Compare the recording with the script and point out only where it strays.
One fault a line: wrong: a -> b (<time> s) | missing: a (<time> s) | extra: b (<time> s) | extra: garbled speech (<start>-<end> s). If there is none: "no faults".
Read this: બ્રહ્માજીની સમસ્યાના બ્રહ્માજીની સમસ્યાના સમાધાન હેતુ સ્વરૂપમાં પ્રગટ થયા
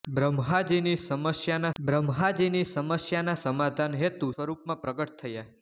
no faults